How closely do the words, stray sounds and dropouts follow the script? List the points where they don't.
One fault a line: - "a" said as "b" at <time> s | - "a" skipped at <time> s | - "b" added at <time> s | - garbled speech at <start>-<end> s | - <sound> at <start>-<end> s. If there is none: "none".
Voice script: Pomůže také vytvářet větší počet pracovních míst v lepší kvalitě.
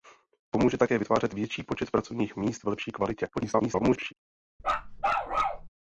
- garbled speech at 3.3-4.1 s
- bark at 4.6-5.7 s